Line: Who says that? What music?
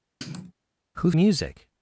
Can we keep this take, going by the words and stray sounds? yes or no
no